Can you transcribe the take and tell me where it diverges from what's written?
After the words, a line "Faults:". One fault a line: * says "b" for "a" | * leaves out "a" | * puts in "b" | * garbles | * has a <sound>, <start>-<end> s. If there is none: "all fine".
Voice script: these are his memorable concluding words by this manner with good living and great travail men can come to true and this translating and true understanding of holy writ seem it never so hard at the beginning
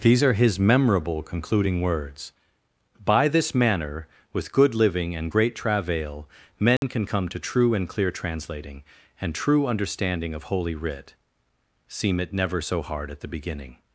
these are his memorable concluding words by this manner with good living and great travail men can come to true and clear translating and true understanding of holy writ seem it never so hard at the beginning
Faults:
* has a dropout, 6.8-6.8 s
* says "clear" for "this"